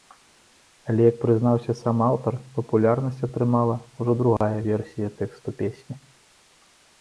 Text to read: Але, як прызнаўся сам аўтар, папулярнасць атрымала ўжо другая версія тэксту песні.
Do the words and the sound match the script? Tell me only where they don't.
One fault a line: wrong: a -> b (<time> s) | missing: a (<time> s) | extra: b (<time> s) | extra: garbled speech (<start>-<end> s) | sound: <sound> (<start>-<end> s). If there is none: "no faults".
sound: dropout (4.4-4.4 s)